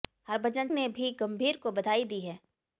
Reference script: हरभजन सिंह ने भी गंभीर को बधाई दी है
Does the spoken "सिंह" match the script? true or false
false